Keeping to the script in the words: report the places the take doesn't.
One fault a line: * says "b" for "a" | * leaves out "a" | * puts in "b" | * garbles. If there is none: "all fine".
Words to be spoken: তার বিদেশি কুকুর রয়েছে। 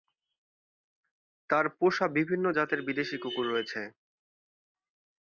* puts in "পোষা বিভিন্ন জাতের"